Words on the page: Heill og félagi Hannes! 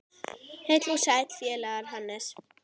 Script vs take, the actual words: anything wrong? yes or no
yes